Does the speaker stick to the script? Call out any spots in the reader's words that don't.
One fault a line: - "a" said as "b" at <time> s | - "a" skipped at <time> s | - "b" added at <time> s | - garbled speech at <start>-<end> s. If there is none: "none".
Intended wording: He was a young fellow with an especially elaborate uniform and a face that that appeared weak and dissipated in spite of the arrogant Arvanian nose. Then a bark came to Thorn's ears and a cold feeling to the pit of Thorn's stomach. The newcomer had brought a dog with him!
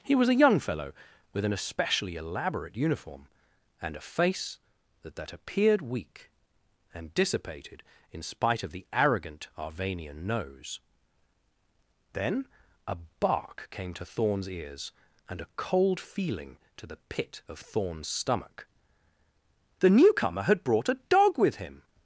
none